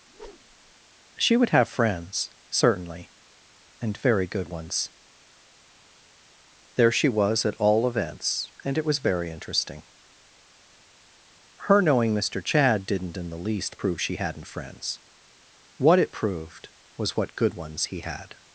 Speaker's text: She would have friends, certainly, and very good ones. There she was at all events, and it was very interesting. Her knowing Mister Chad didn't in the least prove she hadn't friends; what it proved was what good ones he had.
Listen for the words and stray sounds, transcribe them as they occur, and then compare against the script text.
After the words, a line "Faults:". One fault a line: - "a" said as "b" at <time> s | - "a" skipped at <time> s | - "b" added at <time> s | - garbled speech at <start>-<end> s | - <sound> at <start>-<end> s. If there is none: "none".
She would have friends, certainly, and very good ones. There she was at all events, and it was very interesting. Her knowing Mister Chad didn't in the least prove she hadn't friends; what it proved was what good ones he had.
Faults:
- whoosh at 0.1-0.7 s